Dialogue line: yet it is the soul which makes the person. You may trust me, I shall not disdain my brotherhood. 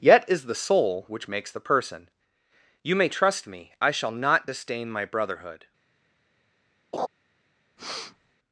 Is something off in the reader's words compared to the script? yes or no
yes